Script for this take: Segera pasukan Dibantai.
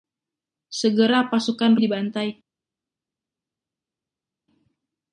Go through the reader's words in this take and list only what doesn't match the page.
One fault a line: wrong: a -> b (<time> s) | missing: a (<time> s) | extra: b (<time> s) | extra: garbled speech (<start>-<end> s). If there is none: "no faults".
no faults